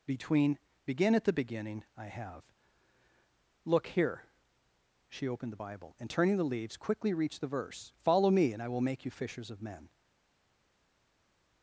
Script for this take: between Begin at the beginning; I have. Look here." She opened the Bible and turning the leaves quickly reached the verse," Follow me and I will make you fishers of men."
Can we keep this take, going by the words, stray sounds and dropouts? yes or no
yes